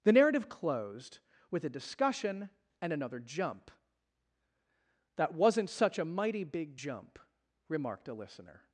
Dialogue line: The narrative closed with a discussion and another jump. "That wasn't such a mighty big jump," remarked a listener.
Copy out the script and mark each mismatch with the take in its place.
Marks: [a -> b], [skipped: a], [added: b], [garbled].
The narrative closed with a discussion and another jump. "That wasn't such a mighty big jump," remarked a listener.